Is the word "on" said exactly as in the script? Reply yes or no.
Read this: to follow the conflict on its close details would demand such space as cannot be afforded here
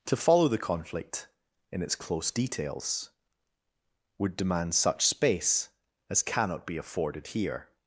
no